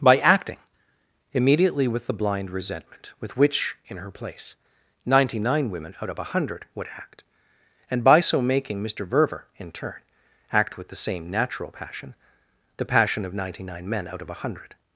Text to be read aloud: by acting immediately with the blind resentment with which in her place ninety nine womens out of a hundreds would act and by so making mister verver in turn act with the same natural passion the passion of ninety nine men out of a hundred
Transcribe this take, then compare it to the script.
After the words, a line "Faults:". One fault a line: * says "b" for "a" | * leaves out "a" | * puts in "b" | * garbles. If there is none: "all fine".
by acting immediately with the blind resentment with which in her place ninety nine women out of a hundred would act and by so making mister verver in turn act with the same natural passion the passion of ninety nine men out of a hundred
Faults:
* says "women" for "womens"
* says "hundred" for "hundreds"